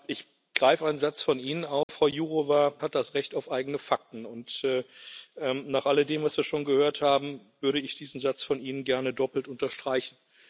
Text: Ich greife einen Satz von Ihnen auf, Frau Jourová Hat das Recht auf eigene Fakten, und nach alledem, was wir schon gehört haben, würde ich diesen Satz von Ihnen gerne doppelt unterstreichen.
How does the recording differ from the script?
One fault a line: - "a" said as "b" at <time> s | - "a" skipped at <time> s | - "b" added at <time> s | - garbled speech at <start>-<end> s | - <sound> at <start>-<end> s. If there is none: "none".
- dropout at 1.8-1.9 s